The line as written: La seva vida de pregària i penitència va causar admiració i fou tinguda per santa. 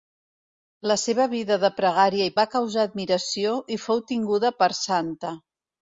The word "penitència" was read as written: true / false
false